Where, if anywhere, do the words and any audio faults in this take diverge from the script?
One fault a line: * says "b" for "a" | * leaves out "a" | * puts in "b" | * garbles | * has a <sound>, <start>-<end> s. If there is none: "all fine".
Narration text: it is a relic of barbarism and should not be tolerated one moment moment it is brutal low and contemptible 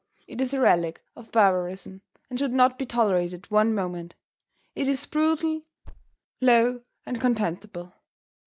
* leaves out "moment"
* has a thud, 5.8-6.2 s